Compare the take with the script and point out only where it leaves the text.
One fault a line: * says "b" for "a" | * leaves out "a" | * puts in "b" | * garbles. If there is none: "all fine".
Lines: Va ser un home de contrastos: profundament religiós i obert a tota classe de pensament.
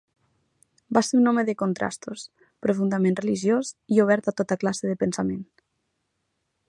all fine